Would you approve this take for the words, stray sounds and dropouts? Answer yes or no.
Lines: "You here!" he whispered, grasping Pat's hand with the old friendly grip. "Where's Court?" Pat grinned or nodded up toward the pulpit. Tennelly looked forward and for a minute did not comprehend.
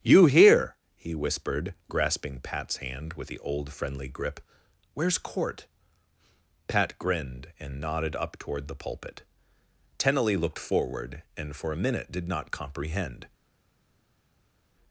no